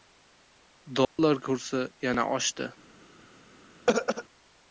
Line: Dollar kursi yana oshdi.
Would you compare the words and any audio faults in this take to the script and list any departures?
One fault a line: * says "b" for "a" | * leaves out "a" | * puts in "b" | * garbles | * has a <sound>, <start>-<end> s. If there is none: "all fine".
* has a dropout, 1.0-1.2 s
* has a throat clearing, 3.9-4.2 s